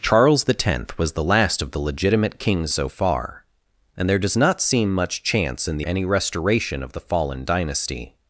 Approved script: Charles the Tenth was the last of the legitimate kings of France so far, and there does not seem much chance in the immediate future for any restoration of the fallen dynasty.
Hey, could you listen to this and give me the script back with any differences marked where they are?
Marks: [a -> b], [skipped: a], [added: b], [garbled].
Charles the Tenth was the last of the legitimate kings [skipped: of France] so far, and there does not seem much chance in the [skipped: immediate future for] any restoration of the fallen dynasty.